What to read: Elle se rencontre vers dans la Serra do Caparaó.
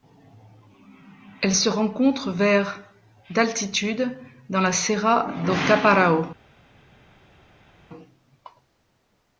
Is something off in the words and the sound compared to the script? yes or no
yes